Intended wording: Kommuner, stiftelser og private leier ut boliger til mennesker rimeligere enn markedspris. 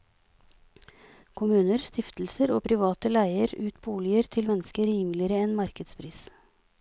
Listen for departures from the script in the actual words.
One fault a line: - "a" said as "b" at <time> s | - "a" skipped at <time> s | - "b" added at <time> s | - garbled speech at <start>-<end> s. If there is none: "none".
none